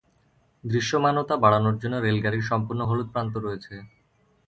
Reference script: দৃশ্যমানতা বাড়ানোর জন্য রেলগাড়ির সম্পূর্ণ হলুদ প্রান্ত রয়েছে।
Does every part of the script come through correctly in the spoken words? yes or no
yes